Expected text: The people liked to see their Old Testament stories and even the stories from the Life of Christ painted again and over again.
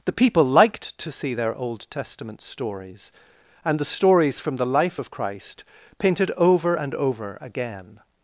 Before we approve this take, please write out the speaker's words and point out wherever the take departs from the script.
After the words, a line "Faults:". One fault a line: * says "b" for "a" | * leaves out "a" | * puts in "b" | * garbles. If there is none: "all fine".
The people liked to see their Old Testament stories and the stories from the Life of Christ painted over and over again.
Faults:
* leaves out "even"
* says "over" for "again"